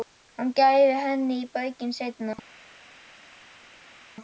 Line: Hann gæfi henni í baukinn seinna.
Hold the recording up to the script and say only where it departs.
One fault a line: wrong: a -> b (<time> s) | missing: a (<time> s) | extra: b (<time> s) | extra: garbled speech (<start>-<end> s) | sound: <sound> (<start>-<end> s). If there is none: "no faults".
no faults